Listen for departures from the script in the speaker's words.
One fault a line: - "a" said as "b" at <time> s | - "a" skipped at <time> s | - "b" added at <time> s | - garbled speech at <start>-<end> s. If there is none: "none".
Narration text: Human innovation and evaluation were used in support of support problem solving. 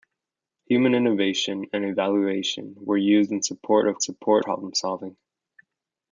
none